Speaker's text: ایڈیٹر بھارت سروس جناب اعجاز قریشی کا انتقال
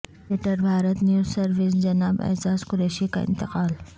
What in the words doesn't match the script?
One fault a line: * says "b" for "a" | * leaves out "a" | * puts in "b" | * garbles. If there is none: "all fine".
* puts in "نیوز"